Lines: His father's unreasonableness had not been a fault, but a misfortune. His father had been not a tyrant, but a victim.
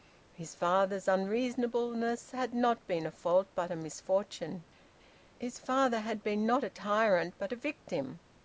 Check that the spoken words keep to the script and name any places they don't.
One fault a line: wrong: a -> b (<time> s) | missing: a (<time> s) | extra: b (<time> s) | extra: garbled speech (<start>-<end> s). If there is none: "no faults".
no faults